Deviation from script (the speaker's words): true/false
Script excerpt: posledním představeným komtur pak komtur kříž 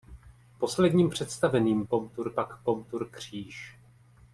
false